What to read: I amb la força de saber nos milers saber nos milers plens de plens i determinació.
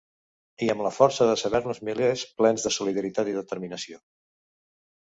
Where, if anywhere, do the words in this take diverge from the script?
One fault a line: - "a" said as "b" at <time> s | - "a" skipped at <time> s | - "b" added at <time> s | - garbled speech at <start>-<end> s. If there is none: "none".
- "saber nos milers" skipped at 2.2 s
- "plens" said as "solidaritat" at 2.8 s